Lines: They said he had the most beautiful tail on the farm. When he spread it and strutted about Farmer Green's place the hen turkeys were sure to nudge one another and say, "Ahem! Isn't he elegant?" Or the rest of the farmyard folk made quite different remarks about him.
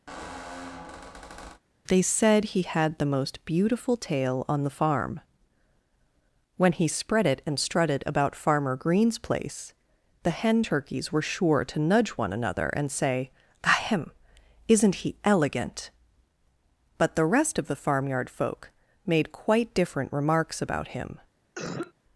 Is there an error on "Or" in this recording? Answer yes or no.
yes